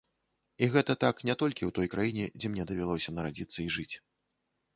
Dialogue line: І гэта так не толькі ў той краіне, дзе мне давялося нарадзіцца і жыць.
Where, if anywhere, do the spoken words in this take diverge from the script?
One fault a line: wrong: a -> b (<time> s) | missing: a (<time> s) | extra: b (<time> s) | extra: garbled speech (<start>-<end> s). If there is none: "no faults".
no faults